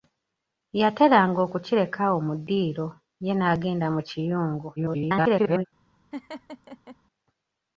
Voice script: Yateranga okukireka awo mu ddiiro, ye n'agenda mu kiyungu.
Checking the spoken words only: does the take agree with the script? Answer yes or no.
no